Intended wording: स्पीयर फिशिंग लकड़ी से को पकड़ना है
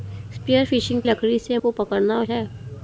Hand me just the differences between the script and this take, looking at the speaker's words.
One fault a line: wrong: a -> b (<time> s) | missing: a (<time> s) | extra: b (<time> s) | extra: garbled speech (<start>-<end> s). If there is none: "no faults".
no faults